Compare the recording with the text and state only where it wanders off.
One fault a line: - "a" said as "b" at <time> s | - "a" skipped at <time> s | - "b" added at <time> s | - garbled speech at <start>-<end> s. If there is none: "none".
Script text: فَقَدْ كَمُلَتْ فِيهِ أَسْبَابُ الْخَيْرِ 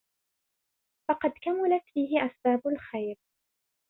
none